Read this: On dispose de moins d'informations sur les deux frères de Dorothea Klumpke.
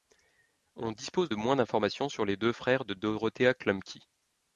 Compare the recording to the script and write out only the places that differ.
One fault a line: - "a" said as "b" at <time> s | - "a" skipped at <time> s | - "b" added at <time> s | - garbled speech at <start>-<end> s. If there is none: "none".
none